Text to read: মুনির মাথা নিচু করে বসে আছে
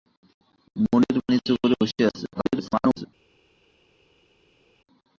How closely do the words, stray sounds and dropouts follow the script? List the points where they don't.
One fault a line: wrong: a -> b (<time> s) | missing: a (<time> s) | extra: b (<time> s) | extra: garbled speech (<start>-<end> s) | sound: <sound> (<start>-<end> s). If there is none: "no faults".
missing: মাথা (1.2 s)
extra: garbled speech (2.3-3.1 s)